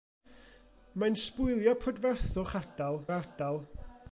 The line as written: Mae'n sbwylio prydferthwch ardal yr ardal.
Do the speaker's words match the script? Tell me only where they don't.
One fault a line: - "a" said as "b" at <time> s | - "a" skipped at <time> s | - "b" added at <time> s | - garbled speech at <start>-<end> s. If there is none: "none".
none